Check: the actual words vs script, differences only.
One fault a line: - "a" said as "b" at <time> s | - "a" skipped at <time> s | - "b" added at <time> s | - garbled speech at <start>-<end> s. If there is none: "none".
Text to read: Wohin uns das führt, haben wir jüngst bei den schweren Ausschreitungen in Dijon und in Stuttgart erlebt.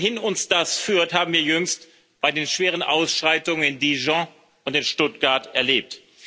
none